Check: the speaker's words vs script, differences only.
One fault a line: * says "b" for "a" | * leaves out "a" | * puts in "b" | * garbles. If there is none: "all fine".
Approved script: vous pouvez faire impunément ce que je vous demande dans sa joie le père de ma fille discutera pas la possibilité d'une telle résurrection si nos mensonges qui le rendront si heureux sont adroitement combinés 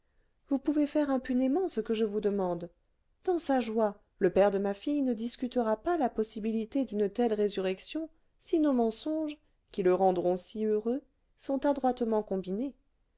* puts in "ne"